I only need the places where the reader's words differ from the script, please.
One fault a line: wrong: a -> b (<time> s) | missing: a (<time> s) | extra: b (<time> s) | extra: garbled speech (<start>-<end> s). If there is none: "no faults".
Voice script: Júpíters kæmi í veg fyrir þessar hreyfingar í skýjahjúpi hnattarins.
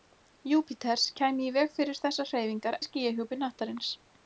no faults